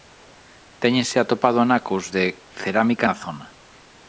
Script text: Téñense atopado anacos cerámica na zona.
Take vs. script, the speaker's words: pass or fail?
fail